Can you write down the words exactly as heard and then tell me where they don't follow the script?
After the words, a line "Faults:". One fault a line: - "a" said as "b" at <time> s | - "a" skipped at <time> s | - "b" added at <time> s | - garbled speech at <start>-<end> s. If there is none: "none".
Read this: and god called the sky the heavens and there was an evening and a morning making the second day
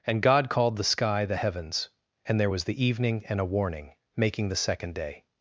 and god called the sky the heavens and there was the evening and a warning making the second day
Faults:
- "an" said as "the" at 2.6 s
- "morning" said as "warning" at 3.4 s